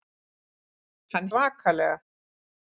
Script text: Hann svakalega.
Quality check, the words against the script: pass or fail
pass